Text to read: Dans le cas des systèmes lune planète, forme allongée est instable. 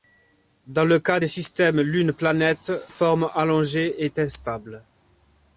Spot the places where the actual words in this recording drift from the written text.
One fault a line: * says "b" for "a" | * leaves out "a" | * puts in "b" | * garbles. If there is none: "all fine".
all fine